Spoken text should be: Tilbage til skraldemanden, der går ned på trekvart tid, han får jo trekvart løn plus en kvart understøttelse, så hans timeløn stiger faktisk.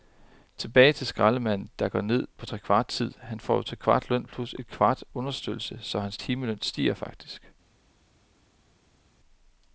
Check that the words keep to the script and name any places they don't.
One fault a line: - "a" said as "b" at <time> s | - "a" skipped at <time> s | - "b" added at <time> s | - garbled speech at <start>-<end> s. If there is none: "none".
none